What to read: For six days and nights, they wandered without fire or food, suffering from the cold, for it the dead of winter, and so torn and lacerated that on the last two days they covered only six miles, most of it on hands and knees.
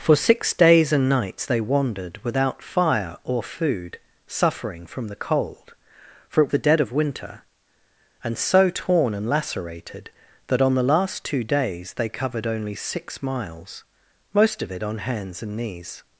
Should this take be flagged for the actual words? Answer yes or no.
no